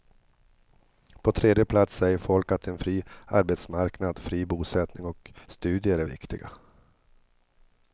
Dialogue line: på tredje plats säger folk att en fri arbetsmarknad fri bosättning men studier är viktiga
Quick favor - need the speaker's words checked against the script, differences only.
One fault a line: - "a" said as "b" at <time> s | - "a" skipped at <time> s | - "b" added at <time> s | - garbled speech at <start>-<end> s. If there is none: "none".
- "men" said as "och" at 5.1 s